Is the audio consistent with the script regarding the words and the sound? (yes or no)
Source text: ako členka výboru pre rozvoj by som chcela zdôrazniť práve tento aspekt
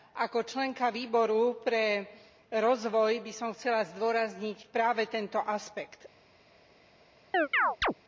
no